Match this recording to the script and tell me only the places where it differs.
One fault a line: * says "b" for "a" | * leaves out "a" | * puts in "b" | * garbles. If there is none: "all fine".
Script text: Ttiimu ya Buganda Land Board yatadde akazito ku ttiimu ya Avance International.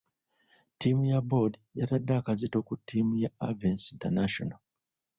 * leaves out "Buganda Land"